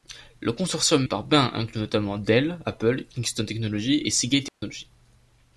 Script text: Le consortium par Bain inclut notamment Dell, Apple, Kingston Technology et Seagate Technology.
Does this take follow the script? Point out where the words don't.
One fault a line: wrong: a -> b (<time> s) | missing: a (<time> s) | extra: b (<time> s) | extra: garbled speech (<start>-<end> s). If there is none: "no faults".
no faults